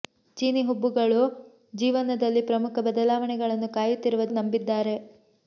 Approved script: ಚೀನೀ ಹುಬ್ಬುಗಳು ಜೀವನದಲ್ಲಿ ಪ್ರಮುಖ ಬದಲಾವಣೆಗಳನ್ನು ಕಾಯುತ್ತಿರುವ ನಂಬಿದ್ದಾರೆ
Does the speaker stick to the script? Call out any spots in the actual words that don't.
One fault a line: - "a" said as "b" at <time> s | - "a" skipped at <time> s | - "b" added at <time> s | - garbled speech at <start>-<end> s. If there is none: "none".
none